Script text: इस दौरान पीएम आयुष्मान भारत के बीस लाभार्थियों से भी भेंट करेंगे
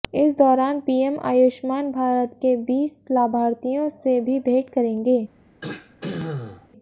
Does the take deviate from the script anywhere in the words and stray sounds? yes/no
yes